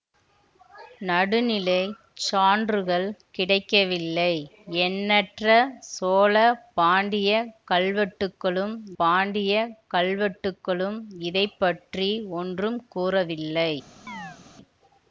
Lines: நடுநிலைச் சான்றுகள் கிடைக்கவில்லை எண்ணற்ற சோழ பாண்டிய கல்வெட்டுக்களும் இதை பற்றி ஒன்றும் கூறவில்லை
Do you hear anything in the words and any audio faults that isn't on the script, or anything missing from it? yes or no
yes